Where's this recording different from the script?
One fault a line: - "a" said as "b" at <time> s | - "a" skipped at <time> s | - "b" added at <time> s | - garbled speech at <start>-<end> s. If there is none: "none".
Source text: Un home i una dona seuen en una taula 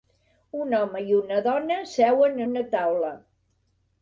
- "en" skipped at 2.4 s